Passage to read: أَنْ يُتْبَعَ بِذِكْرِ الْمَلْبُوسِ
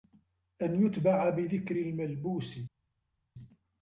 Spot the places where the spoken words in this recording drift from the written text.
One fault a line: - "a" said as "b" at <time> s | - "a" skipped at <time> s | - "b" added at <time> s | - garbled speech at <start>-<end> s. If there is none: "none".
none